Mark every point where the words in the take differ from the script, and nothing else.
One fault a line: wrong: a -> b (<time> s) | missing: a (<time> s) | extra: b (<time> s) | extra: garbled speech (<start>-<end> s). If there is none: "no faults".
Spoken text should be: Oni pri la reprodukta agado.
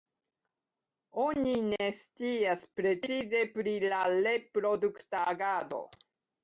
extra: ne scias precize (1.7 s)